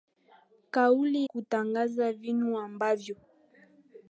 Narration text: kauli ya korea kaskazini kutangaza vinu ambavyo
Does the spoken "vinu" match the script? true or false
true